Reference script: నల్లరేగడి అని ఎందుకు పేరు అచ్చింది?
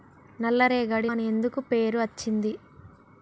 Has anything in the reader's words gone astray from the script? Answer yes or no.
no